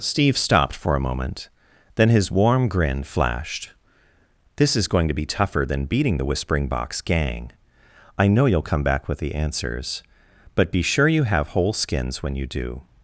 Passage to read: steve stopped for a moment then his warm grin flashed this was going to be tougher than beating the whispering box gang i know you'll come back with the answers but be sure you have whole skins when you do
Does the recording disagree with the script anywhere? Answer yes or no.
yes